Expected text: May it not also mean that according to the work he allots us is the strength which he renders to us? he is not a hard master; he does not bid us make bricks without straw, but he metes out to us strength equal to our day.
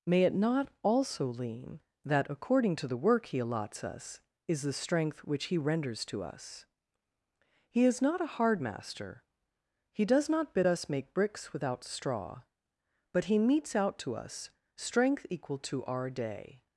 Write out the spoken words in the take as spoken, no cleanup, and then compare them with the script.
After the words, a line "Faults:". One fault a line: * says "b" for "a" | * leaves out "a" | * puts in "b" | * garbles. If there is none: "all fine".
May it not also lean that according to the work he allots us is the strength which he renders to us? he is not a hard master; he does not bid us make bricks without straw, but he metes out to us strength equal to our day.
Faults:
* says "lean" for "mean"